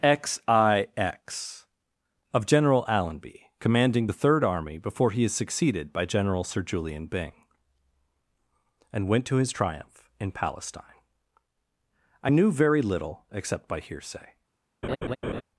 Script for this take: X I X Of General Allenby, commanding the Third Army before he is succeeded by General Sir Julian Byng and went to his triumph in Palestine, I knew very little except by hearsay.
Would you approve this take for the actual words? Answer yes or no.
yes